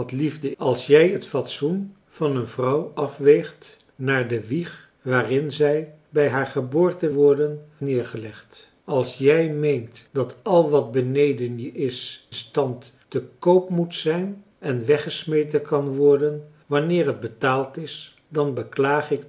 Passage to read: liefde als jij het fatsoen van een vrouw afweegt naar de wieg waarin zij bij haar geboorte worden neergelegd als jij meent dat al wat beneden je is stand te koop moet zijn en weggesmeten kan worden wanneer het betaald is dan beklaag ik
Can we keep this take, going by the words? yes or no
yes